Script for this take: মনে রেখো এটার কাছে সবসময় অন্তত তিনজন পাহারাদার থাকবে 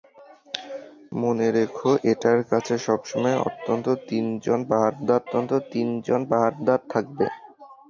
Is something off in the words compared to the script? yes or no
yes